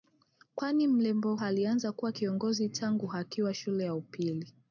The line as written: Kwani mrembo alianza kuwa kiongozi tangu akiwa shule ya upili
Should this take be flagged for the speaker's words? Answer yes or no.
no